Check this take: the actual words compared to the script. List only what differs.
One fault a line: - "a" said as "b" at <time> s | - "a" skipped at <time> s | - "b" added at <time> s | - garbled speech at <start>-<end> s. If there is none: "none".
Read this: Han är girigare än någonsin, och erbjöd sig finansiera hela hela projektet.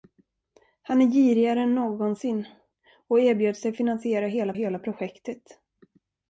none